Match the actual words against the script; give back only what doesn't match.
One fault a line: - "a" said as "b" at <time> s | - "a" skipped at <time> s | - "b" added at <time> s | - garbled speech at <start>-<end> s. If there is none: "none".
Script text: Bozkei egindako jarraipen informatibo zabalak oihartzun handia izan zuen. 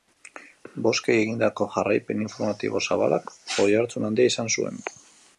none